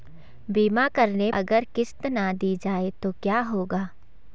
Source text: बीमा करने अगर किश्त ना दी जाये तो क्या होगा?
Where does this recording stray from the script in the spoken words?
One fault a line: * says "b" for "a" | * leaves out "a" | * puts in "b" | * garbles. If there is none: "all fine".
all fine